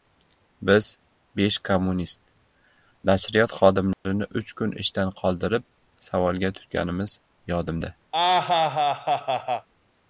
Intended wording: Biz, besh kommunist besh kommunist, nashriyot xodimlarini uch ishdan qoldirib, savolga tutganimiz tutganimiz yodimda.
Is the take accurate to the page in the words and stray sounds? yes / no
no